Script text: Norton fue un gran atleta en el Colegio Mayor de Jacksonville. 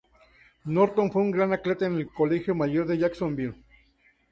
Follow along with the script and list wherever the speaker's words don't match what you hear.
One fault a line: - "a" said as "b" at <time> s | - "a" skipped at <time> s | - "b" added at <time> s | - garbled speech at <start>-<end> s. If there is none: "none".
none